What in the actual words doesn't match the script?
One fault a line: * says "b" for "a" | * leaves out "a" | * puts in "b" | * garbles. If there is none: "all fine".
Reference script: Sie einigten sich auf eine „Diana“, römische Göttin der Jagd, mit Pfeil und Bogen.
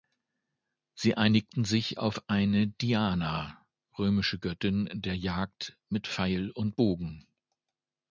all fine